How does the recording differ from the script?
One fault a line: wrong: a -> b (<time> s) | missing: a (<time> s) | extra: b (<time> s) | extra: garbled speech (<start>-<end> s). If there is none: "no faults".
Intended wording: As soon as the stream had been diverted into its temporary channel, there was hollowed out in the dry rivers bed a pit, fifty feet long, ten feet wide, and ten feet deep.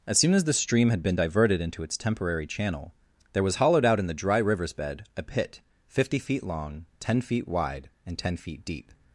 no faults